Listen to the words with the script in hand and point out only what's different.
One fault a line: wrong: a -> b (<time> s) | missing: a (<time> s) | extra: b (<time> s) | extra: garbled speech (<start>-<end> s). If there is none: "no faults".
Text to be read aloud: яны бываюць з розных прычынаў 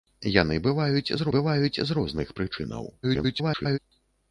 extra: бываюць з (1.4 s)
extra: garbled speech (3.0-3.8 s)